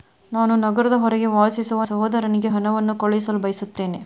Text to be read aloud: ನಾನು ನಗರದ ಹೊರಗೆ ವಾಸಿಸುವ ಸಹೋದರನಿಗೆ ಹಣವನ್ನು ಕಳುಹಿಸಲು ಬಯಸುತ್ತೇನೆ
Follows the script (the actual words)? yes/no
yes